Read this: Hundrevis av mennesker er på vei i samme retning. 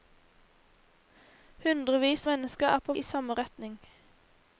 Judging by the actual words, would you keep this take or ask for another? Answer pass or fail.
fail